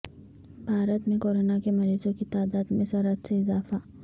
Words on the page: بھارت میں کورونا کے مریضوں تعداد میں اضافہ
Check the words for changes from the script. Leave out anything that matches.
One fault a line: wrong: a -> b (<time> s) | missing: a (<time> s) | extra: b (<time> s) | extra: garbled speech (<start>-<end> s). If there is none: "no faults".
extra: کی (2.1 s)
extra: سرعت سے (2.9 s)